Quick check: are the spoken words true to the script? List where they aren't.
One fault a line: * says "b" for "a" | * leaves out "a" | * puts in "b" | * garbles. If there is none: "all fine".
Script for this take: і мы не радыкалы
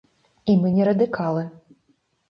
all fine